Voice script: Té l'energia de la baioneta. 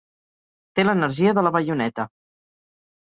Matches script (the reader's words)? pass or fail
pass